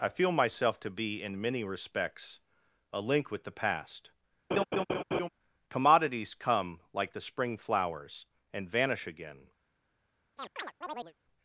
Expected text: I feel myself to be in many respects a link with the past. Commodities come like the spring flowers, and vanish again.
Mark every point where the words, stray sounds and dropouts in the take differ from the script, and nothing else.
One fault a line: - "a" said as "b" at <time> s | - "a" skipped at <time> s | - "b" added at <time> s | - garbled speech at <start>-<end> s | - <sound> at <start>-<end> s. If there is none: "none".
- laugh at 4.5-5.3 s
- chirp at 10.4-11.1 s